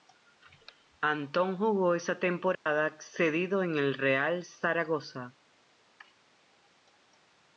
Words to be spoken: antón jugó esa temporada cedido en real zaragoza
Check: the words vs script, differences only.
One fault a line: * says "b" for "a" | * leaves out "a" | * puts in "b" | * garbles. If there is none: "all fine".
* puts in "el"